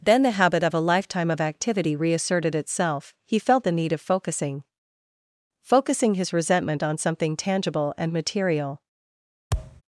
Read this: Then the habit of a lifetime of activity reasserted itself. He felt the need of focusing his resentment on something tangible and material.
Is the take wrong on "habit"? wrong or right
right